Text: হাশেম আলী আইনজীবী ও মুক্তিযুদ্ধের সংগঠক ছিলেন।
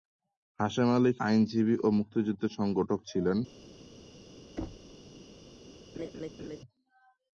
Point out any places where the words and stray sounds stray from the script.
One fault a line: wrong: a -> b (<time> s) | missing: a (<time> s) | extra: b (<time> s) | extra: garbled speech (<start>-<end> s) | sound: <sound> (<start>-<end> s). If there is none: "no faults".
sound: thud (4.6-4.9 s)
sound: laugh (5.9-6.6 s)